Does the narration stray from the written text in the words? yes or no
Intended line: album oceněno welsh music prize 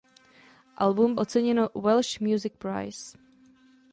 no